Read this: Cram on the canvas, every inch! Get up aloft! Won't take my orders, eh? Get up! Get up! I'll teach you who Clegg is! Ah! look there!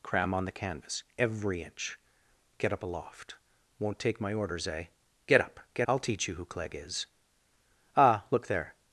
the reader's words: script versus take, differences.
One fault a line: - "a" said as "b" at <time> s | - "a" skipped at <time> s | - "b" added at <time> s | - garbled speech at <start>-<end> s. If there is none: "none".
- "up" skipped at 5.9 s